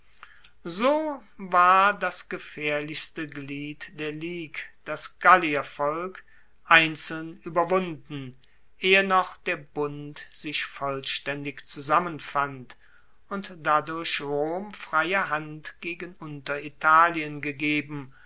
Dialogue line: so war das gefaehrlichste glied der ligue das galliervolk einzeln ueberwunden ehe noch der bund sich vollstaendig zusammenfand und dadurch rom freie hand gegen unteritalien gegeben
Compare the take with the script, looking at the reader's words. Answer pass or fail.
pass